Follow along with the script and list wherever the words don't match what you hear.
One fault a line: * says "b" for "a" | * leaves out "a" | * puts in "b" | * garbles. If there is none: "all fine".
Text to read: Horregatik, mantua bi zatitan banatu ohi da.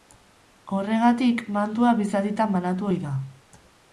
all fine